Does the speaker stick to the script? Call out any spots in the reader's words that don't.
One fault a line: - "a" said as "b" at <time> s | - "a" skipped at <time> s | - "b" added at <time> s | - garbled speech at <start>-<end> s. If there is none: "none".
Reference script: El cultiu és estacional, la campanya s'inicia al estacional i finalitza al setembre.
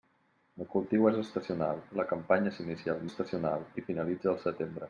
none